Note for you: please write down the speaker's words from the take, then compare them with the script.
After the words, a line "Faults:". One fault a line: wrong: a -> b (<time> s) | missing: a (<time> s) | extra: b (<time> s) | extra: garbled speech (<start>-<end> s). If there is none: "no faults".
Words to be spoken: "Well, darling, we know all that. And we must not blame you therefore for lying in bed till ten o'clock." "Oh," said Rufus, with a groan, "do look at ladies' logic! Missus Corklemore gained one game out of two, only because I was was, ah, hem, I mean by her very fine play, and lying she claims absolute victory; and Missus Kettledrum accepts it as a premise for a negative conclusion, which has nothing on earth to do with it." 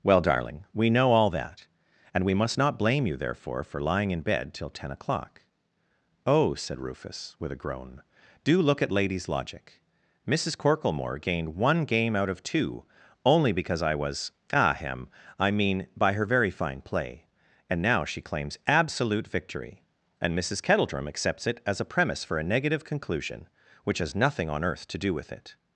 "Well, darling, we know all that. And we must not blame you therefore for lying in bed till ten o'clock." "Oh," said Rufus, with a groan, "do look at ladies' logic! Missus Corklemore gained one game out of two, only because I was, ah, hem, I mean by her very fine play, and now she claims absolute victory; and Missus Kettledrum accepts it as a premise for a negative conclusion, which has nothing on earth to do with it."
Faults:
missing: was (14.3 s)
wrong: lying -> now (17.8 s)